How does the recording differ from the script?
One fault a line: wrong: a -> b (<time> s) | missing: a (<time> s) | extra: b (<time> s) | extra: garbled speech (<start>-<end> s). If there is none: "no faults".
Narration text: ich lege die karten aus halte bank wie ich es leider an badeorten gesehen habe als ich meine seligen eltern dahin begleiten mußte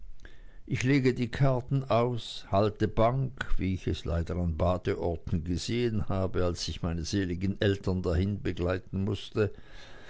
no faults